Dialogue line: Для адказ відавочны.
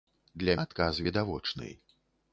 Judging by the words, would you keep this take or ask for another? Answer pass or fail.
pass